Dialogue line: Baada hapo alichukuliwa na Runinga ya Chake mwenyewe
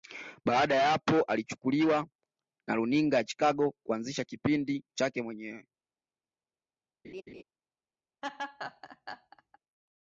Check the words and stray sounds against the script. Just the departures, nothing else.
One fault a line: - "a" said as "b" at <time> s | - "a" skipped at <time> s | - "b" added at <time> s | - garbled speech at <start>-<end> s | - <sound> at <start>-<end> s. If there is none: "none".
- "ya" added at 0.8 s
- "Chicago kuanzisha kipindi" added at 3.2 s
- laugh at 7.0-7.4 s
- laugh at 8.2-9.6 s